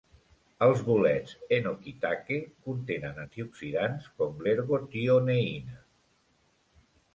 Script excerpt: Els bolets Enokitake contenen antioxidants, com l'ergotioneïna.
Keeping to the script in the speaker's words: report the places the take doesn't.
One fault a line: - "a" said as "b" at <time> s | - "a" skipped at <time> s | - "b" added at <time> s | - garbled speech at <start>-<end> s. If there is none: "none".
none